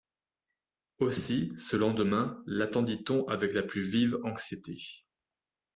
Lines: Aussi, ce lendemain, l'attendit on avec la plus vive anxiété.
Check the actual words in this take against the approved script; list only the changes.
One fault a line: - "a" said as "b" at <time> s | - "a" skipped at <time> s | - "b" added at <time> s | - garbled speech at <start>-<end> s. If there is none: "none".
none